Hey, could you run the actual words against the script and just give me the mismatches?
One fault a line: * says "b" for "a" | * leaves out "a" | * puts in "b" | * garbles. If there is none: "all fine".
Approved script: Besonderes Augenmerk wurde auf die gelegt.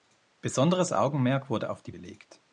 all fine